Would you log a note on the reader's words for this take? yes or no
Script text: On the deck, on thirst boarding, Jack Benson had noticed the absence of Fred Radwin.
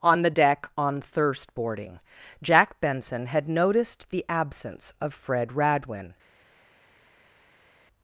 no